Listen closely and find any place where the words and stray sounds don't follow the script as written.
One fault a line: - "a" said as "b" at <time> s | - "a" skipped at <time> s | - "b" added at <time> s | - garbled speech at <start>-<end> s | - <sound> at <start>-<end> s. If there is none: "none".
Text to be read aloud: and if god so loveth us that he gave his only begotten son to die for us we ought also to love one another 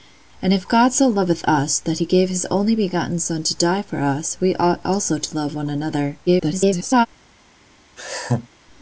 - garbled speech at 6.3-7.1 s
- laugh at 8.0-8.5 s